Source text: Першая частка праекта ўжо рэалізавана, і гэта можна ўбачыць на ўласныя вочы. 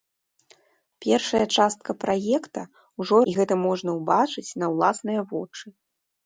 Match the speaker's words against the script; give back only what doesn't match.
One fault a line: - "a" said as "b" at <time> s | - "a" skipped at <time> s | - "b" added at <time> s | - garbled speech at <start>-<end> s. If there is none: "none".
- "рэалізавана" skipped at 3.2 s